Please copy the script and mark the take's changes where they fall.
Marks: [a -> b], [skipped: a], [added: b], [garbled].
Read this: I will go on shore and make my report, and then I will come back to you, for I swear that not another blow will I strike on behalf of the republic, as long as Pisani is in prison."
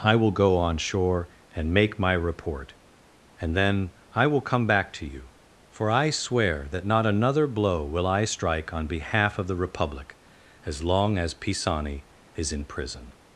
I will go on shore and make my report, and then I will come back to you, for I swear that not another blow will I strike on behalf of the republic, as long as Pisani is in prison."